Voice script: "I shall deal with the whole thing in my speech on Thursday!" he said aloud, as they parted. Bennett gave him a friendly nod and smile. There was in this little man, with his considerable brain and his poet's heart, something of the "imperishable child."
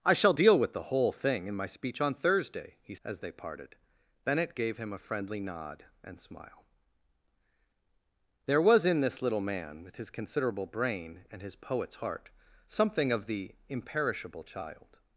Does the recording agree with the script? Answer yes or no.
no